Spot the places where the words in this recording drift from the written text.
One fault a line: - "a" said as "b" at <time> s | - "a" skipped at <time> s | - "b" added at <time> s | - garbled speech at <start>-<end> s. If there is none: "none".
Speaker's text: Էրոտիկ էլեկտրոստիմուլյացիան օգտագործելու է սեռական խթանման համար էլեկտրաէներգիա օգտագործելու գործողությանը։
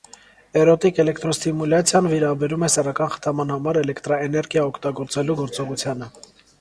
- "օգտագործելու" said as "վերաբերում" at 2.1 s